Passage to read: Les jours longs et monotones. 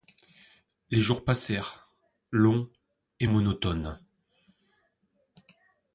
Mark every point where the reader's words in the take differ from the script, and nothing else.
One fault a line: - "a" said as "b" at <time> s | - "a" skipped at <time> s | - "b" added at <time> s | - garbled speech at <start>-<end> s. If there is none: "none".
- "passèrent" added at 1.2 s